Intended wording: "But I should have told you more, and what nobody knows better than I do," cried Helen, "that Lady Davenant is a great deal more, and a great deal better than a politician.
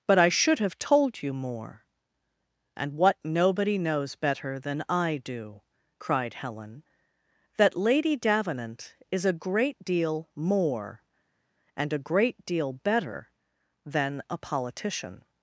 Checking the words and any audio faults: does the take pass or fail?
pass